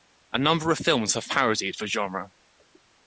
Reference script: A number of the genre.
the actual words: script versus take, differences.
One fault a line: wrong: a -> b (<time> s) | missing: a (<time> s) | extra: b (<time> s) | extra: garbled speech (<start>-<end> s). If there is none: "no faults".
extra: films have parodied (0.8 s)